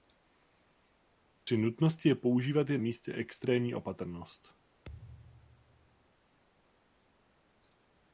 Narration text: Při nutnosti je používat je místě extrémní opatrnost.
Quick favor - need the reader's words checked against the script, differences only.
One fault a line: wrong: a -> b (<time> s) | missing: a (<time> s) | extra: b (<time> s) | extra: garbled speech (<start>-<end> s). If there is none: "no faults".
no faults